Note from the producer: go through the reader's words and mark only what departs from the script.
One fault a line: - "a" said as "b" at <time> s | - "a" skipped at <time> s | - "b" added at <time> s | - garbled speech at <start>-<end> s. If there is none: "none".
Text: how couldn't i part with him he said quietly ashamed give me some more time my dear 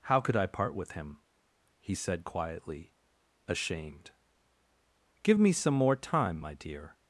- "couldn't" said as "could" at 0.2 s